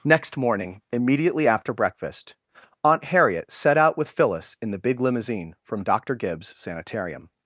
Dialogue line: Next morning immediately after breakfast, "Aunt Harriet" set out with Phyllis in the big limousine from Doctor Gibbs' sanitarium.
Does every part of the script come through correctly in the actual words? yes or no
yes